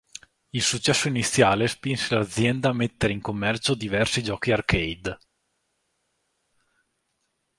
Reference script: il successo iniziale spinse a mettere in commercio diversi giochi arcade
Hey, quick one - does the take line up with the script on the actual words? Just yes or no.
no